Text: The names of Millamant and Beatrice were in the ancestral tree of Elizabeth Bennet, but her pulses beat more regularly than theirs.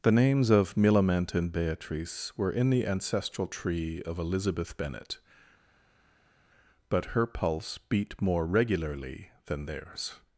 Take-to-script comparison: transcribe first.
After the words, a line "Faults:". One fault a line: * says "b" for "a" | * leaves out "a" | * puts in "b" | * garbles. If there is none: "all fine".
The names of Millamant and Beatrice were in the ancestral tree of Elizabeth Bennet, but her pulse beat more regularly than theirs.
Faults:
* says "pulse" for "pulses"